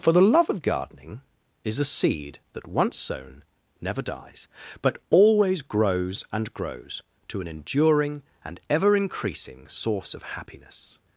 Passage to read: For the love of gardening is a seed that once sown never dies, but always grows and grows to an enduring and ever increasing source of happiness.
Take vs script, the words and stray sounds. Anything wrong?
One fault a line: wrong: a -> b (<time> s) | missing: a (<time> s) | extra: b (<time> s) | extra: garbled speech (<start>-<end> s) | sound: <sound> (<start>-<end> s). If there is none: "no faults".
no faults